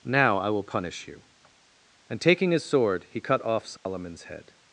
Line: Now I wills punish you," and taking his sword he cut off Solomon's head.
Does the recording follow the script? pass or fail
fail